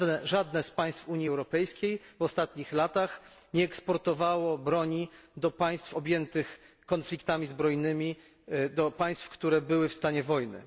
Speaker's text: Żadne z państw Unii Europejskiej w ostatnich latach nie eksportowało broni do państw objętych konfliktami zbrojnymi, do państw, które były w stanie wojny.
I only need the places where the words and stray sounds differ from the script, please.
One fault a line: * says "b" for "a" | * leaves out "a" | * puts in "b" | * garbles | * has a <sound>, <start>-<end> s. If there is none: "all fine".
all fine